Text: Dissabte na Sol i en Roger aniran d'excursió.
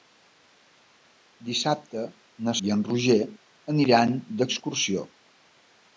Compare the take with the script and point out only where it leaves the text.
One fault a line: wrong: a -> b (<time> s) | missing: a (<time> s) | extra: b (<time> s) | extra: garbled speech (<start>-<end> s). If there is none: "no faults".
missing: Sol (2.6 s)